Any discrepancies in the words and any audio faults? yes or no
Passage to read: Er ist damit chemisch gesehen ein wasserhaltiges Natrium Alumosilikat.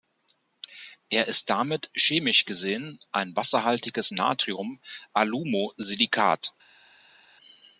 no